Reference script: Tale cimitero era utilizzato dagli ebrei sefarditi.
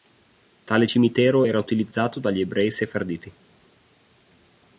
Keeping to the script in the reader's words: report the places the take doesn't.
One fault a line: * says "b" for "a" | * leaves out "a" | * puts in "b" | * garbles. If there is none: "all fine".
all fine